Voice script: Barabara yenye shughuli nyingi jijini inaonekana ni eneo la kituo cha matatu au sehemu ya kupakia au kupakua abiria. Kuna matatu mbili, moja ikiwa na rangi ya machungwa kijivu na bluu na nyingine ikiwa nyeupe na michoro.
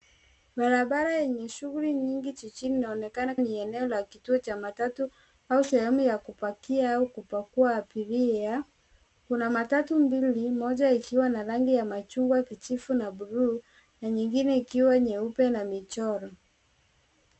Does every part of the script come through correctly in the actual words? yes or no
yes